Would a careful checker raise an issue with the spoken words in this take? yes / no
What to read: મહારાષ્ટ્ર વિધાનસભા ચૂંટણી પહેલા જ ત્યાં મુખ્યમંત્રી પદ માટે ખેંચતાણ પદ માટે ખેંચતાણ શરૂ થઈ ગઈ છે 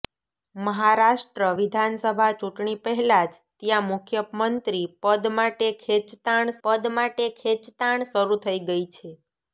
no